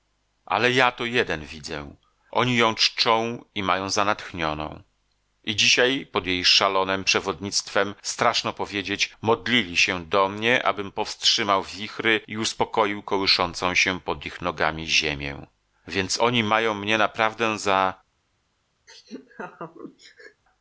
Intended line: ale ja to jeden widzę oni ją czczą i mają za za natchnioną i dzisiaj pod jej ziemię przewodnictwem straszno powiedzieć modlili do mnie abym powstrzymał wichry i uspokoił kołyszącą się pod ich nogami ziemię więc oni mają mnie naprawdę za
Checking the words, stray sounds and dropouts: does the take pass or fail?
fail